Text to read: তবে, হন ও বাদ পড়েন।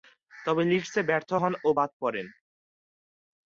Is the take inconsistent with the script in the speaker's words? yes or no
yes